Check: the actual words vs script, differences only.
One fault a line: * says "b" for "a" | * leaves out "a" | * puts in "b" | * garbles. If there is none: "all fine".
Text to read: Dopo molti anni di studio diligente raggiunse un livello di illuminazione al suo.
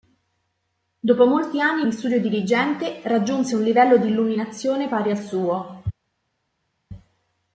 * puts in "pari"